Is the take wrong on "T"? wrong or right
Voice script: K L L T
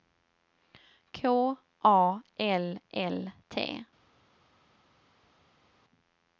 right